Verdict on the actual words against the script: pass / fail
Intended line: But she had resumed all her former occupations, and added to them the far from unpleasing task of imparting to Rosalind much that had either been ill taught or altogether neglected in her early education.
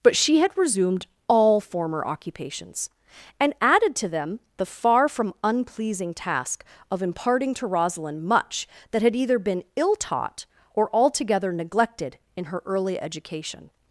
fail